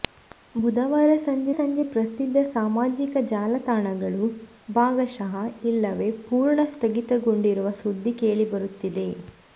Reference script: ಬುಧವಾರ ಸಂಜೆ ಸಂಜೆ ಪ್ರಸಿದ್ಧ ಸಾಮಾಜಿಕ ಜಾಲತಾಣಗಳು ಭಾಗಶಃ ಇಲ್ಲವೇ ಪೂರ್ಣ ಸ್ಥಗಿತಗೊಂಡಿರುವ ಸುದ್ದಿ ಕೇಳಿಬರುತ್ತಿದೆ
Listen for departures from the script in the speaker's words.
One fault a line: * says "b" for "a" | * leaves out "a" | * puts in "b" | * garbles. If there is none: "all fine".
all fine